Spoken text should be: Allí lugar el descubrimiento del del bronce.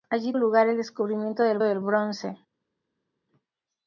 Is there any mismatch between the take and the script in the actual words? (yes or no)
no